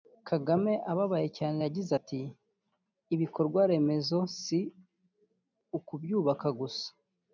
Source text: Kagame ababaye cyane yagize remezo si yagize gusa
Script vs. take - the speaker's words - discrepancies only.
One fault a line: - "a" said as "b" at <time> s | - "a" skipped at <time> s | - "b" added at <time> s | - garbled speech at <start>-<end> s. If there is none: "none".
- "ati Ibikorwa" added at 2.0 s
- "yagize" said as "ukubyubaka" at 5.8 s